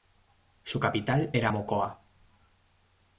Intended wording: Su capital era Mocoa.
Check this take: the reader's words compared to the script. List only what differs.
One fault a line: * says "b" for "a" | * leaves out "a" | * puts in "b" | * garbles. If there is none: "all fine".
all fine